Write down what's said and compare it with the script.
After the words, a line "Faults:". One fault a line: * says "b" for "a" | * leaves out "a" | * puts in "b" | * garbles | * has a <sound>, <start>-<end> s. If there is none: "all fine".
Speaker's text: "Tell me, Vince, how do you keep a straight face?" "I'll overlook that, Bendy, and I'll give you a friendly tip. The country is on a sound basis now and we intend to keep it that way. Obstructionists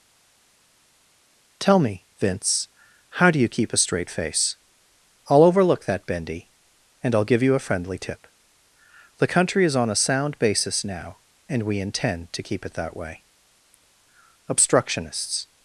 "Tell me, Vince, how do you keep a straight face?" "I'll overlook that, Bendy, and I'll give you a friendly tip. The country is on a sound basis now and we intend to keep it that way. Obstructionists
Faults:
all fine